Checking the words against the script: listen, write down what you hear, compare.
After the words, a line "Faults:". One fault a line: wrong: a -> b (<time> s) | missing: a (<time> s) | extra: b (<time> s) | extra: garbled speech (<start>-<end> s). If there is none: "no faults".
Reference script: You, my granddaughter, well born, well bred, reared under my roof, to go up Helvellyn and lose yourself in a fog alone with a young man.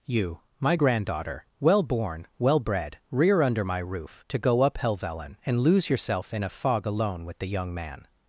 You, my granddaughter, well born, well bred, rear under my roof, to go up Helvellyn and lose yourself in a fog alone with the young man.
Faults:
wrong: reared -> rear (3.1 s)
wrong: a -> the (7.4 s)